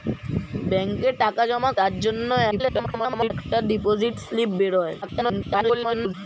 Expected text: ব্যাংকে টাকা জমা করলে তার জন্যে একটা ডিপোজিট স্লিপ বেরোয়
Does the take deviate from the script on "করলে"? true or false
true